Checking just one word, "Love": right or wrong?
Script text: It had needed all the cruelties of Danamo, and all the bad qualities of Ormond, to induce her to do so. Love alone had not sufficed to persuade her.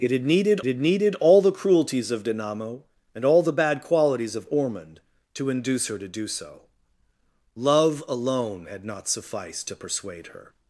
right